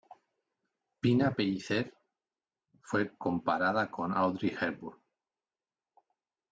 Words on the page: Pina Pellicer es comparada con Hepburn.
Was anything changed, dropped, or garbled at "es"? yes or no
yes